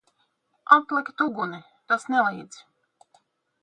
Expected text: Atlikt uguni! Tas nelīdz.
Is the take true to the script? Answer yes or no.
yes